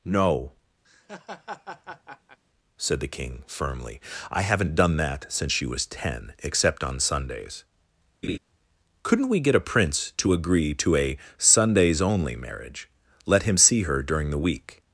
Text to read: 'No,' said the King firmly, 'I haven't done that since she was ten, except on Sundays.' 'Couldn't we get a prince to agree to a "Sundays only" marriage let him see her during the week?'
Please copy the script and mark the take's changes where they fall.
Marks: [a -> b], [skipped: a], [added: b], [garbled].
'No,' said the King firmly, 'I haven't done that since she was ten, except on Sundays.' 'Couldn't we get a prince to agree to a "Sundays only" marriage let him see her during the week?'